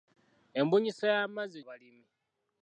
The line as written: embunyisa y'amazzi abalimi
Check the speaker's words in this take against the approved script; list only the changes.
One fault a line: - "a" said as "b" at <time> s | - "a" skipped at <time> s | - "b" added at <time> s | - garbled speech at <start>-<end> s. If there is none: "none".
none